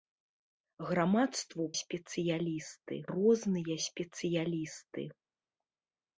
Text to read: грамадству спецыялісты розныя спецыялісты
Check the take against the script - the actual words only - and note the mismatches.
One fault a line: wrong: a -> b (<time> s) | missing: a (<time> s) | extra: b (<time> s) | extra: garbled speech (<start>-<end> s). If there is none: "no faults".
no faults